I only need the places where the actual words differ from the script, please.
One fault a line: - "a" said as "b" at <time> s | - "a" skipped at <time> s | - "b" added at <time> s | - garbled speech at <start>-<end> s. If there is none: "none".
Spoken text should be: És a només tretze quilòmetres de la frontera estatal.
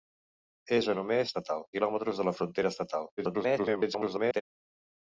- "tretze" said as "estatal" at 1.3 s
- garbled speech at 3.2-4.4 s